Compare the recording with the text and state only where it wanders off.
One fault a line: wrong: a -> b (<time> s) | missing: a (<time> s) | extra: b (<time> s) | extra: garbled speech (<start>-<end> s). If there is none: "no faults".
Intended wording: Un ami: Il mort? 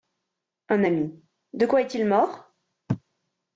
extra: De quoi est (1.5 s)